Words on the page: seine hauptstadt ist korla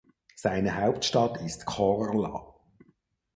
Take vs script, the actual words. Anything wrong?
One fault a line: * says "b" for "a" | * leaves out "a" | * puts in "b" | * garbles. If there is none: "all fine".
all fine